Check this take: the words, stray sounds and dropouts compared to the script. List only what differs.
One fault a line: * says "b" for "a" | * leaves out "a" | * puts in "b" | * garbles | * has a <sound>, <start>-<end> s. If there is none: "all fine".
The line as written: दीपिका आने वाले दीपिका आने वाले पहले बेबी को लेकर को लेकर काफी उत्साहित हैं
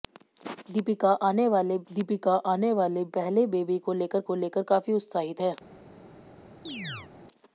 * has a chirp, 6.7-7.1 s